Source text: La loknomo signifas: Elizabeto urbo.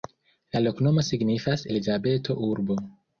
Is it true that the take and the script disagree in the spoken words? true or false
false